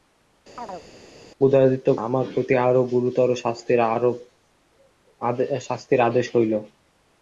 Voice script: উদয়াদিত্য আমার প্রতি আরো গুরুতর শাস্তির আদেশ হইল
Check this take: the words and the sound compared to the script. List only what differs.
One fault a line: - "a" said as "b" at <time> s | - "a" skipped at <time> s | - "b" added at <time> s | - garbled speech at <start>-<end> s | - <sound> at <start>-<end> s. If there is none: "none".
- chirp at 0.6-0.9 s